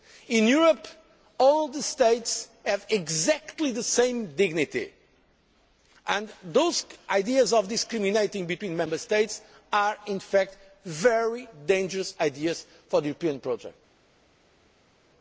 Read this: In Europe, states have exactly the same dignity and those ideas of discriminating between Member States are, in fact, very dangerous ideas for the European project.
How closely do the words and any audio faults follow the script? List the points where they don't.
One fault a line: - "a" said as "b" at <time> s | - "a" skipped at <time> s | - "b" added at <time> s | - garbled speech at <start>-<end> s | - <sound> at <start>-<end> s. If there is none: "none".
- "all the" added at 1.4 s